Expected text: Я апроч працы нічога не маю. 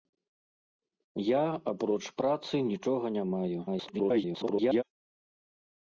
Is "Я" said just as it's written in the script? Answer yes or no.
yes